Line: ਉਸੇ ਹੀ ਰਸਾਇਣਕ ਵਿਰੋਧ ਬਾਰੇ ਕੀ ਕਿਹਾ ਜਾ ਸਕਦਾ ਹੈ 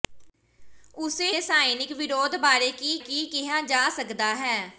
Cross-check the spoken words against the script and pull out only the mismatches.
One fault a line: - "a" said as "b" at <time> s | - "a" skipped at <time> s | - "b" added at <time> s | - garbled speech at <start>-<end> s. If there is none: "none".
- "ਹੀ" skipped at 1.3 s
- "ਕੀ" added at 3.0 s